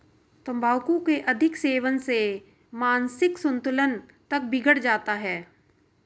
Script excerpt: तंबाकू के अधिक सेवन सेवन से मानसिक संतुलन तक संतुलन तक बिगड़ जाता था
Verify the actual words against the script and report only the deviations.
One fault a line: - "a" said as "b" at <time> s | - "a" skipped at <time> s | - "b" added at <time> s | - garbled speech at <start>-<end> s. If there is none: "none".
- "सेवन" skipped at 2.0 s
- "संतुलन तक" skipped at 4.4 s
- "था" said as "है" at 5.1 s